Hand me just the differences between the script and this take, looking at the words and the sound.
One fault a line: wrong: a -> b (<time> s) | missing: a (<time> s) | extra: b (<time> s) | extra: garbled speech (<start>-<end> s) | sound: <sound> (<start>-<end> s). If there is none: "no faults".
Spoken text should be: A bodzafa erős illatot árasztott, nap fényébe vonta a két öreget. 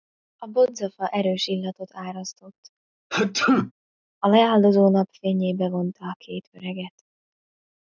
sound: sneeze (3.1-3.7 s)
extra: a leáldozó (4.2 s)